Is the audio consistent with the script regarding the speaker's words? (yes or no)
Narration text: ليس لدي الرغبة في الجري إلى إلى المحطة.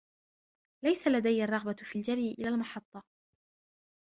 no